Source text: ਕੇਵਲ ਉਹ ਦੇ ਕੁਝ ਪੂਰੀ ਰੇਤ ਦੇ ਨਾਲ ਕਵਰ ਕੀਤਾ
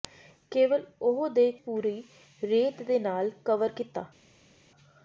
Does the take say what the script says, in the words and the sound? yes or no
no